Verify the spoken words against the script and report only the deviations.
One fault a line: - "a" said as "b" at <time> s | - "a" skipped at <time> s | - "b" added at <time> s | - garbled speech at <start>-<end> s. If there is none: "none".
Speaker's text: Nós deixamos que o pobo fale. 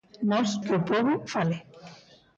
- "deixamos" skipped at 0.5 s